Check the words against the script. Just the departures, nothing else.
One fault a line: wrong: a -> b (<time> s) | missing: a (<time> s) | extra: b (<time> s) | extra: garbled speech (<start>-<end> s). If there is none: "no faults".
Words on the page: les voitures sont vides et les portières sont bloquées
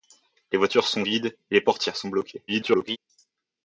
extra: garbled speech (2.5-3.0 s)